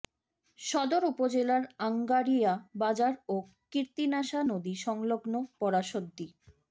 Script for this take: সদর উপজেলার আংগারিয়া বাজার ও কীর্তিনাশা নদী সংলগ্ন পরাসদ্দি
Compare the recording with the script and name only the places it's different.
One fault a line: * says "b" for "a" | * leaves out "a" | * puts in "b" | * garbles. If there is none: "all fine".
all fine